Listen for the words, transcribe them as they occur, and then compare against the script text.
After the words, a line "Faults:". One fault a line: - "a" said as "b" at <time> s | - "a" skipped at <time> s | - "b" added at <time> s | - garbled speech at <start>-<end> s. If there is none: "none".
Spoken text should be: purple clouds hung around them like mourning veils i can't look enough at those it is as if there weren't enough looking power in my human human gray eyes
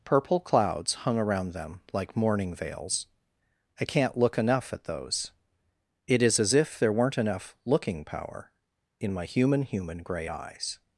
purple clouds hung around them like mourning veils i can't look enough at those it is as if there weren't enough looking power in my human human gray eyes
Faults:
none